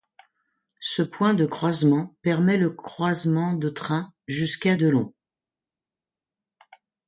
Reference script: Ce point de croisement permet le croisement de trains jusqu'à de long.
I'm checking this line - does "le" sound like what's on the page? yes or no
yes